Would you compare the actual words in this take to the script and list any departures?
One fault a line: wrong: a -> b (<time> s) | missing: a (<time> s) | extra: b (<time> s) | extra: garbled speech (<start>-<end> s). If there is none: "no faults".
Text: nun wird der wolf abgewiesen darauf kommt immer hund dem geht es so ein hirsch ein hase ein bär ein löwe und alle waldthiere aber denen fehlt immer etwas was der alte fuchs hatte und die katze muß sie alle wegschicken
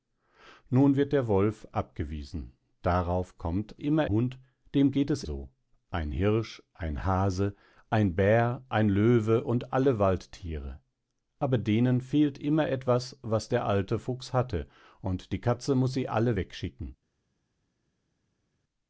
no faults